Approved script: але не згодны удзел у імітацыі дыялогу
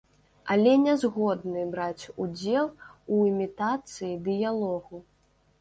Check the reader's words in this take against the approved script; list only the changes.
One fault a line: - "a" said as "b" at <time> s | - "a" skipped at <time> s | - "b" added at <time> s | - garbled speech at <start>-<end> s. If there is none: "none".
- "браць" added at 1.8 s